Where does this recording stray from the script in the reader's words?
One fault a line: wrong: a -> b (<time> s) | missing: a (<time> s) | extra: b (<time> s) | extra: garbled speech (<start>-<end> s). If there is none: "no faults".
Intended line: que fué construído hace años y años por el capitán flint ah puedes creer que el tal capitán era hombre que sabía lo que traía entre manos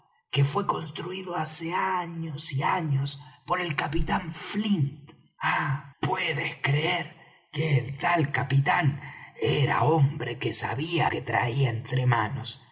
missing: lo (11.1 s)